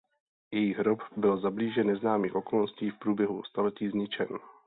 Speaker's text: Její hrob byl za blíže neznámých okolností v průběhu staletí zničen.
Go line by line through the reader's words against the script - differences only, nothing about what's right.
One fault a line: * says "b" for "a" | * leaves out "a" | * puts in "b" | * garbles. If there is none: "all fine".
all fine